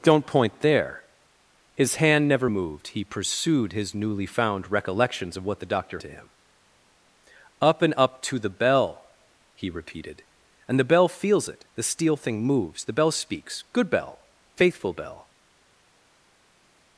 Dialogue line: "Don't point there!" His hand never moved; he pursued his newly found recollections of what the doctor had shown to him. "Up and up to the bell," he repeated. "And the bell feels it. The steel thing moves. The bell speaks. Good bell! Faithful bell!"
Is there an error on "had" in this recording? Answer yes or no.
yes